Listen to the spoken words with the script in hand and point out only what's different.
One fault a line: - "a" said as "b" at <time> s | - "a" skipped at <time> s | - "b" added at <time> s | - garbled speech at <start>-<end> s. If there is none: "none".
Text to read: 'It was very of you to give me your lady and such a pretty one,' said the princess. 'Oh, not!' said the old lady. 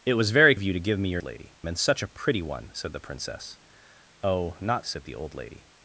none